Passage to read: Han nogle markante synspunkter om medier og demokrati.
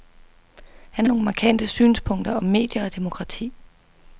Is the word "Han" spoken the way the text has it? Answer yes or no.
yes